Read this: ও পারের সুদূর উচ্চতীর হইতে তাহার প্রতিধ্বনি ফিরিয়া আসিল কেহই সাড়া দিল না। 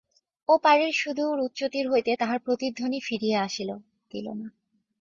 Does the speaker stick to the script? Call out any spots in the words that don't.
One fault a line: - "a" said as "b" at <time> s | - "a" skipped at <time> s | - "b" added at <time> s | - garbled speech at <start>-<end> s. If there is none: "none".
- "কেহই সাড়া" skipped at 3.7 s